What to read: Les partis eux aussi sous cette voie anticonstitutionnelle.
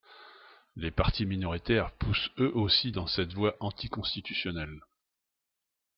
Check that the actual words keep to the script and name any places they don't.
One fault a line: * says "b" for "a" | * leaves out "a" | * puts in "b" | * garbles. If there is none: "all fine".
* puts in "minoritaires poussent"
* says "dans" for "sous"